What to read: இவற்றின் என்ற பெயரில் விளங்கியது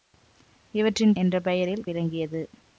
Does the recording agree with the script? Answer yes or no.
yes